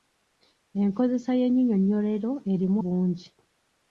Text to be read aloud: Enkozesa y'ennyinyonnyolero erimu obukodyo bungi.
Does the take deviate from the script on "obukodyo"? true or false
true